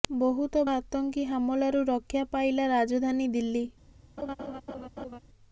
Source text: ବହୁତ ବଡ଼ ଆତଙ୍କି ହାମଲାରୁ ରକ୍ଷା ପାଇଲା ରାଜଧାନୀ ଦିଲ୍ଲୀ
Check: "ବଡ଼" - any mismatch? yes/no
yes